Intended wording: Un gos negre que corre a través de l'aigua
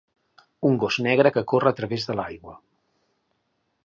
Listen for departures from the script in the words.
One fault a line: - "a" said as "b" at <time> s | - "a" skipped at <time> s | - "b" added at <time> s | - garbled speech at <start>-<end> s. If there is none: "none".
none